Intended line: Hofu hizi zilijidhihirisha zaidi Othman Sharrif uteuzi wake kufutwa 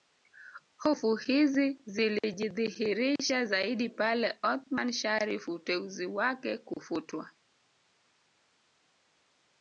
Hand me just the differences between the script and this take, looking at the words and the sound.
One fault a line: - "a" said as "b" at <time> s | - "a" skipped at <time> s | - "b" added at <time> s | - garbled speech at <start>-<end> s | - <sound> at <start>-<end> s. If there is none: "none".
- "pale" added at 3.9 s